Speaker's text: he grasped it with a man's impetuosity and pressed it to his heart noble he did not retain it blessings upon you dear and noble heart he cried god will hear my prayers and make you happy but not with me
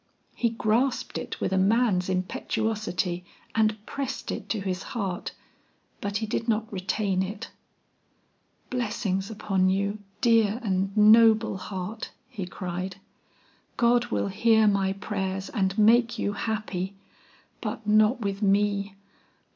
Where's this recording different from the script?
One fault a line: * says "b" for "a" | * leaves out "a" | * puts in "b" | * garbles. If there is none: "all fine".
* says "but" for "noble"